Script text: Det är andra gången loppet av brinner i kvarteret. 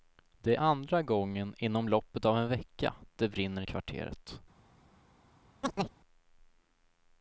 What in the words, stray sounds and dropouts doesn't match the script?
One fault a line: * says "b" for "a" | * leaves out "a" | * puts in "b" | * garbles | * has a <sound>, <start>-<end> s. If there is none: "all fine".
* puts in "inom"
* puts in "en vecka det"
* has a chirp, 5.6-6.0 s